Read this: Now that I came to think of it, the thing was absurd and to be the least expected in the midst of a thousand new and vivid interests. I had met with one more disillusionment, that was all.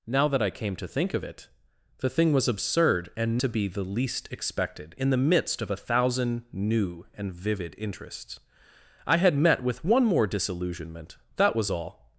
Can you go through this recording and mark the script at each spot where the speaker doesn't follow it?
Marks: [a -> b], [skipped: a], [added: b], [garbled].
Now that I came to think of it, the thing was absurd and to be the least expected in the midst of a thousand new and vivid interests. I had met with one more disillusionment, that was all.